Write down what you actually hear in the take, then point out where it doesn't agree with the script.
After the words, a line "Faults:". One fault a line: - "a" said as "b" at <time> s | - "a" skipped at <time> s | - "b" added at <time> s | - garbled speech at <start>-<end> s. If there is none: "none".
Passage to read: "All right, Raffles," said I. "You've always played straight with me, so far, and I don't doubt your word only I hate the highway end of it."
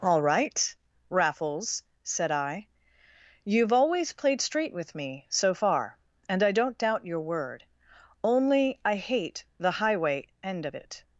"All right, Raffles," said I. "You've always played straight with me, so far, and I don't doubt your word only I hate the highway end of it."
Faults:
none